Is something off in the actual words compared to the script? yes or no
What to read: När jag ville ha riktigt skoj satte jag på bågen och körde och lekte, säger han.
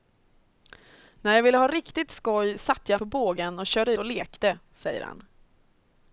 no